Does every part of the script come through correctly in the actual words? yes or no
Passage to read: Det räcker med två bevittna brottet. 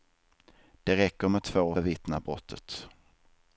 yes